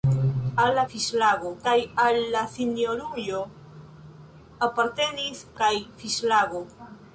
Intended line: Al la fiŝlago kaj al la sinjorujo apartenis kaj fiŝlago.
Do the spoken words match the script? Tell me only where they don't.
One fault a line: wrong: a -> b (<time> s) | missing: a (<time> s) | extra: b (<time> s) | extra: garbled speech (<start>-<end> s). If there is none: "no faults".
no faults